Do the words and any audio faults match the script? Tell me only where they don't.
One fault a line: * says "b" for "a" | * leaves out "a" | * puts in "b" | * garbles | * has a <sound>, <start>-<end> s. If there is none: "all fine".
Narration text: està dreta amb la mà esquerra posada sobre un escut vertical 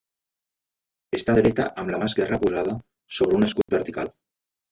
* has a dropout, 3.6-3.7 s